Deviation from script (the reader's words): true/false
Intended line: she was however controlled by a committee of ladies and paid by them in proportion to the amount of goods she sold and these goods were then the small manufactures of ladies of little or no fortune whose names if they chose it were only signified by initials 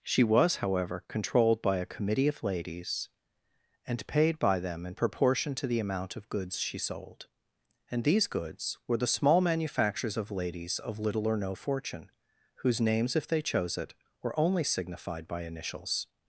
true